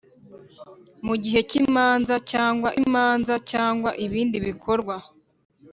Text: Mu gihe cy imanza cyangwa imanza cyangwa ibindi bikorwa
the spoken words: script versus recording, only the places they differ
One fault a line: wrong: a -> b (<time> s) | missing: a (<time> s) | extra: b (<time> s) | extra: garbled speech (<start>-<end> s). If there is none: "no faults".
no faults